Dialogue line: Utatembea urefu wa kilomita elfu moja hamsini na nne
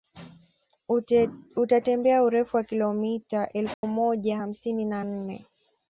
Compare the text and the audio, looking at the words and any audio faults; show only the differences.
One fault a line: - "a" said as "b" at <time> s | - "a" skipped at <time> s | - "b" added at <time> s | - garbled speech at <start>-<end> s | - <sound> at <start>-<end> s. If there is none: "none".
- dropout at 3.7-3.8 s